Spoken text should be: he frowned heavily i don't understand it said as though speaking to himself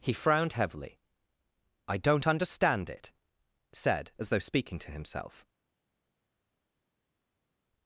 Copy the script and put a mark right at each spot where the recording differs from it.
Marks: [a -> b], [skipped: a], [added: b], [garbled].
he frowned heavily i don't understand it said as though speaking to himself